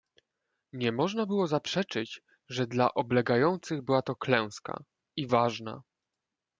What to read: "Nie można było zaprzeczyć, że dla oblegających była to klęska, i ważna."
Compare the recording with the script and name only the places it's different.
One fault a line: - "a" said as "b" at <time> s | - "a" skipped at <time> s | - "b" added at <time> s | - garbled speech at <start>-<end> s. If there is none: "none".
none